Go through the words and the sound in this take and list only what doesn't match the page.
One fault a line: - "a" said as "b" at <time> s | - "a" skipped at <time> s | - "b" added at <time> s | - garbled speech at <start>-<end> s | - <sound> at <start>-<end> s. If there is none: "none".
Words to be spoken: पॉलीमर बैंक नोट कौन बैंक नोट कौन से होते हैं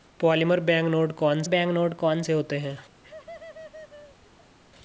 - laugh at 3.0-4.6 s